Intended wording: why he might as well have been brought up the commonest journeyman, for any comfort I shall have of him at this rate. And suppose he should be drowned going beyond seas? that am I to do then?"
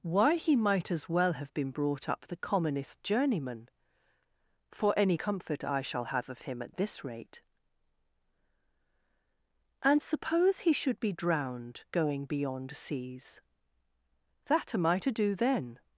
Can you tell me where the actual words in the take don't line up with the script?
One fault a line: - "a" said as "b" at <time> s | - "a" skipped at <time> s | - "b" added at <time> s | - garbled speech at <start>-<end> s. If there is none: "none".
none